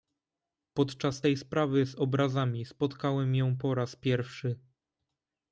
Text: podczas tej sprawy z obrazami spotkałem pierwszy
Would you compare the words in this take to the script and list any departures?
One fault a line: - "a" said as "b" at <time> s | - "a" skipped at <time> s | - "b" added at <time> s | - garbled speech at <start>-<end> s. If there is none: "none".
- "ją po raz" added at 3.3 s